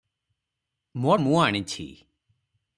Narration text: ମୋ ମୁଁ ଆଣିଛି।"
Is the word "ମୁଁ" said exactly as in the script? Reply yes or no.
yes